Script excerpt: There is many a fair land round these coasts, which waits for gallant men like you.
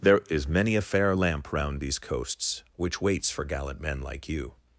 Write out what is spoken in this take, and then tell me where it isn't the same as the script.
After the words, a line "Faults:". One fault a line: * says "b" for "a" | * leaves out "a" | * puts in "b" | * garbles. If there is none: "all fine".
There is many a fair lamp round these coasts, which waits for gallant men like you.
Faults:
* says "lamp" for "land"